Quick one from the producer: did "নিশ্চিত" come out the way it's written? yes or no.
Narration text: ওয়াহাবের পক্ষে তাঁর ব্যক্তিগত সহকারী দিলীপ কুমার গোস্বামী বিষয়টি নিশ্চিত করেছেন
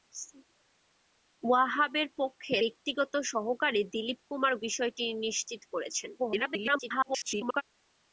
yes